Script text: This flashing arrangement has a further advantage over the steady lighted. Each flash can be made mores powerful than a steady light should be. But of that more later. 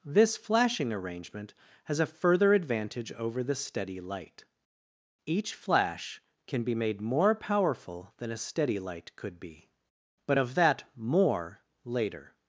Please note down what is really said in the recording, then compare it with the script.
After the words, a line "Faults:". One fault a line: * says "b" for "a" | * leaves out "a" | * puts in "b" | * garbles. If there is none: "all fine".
This flashing arrangement has a further advantage over the steady light. Each flash can be made more powerful than a steady light could be. But of that more later.
Faults:
* says "light" for "lighted"
* says "more" for "mores"
* says "could" for "should"